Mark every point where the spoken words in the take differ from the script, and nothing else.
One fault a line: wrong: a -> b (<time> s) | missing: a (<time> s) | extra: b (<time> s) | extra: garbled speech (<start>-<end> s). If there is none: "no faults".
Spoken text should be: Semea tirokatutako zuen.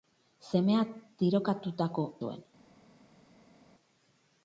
no faults